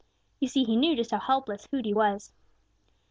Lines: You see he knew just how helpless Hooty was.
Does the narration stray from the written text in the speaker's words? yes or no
no